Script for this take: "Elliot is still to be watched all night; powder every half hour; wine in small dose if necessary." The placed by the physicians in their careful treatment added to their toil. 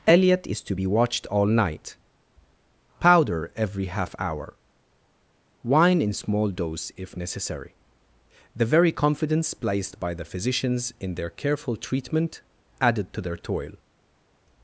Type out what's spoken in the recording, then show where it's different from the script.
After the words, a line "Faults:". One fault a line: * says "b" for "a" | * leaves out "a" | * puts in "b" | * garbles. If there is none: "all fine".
"Elliot is to be watched all night; powder every half hour; wine in small dose if necessary." The very confidence placed by the physicians in their careful treatment added to their toil.
Faults:
* leaves out "still"
* puts in "very confidence"